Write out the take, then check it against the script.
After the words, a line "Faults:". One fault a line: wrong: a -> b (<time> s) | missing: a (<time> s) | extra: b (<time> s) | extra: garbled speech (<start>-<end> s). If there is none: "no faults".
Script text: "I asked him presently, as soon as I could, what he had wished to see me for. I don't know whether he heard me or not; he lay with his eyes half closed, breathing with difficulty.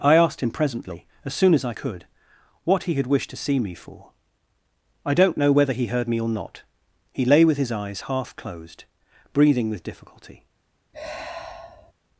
"I asked him presently, as soon as I could, what he had wished to see me for. I don't know whether he heard me or not; he lay with his eyes half closed, breathing with difficulty.
Faults:
no faults